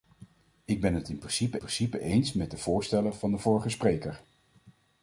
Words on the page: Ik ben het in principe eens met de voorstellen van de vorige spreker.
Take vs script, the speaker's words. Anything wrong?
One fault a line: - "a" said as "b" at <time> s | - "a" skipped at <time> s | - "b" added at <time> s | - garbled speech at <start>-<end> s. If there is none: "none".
- "principe" added at 1.6 s